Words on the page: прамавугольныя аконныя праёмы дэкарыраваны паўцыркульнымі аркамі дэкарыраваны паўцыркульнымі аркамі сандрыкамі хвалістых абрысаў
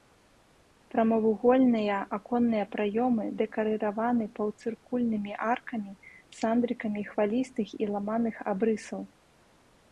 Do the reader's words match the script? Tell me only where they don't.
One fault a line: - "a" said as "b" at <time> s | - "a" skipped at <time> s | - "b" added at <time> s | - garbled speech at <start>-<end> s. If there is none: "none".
- "дэкарыраваны паўцыркульнымі аркамі сандрыкамі хвалістых" said as "сандрыкамі хвалістых і ламаных" at 6.4 s